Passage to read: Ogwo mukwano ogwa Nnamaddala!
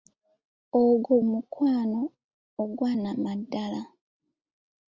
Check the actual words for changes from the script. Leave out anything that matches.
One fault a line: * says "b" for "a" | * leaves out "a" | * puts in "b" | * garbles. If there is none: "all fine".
all fine